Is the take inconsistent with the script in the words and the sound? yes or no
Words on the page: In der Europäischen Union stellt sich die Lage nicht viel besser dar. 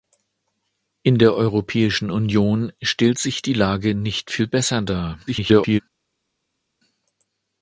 yes